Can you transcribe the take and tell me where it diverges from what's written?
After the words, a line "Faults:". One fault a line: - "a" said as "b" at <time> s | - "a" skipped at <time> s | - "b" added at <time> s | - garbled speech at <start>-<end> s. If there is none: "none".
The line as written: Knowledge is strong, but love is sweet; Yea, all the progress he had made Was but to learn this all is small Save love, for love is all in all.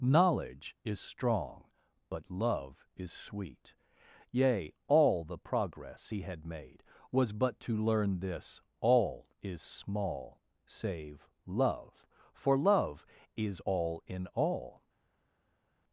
Knowledge is strong, but love is sweet; Yea, all the progress he had made Was but to learn this all is small Save love, for love is all in all.
Faults:
none